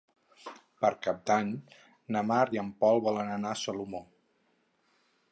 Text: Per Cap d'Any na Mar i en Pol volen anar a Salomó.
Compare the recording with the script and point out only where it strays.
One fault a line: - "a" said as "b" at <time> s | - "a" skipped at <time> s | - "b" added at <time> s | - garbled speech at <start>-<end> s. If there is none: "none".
none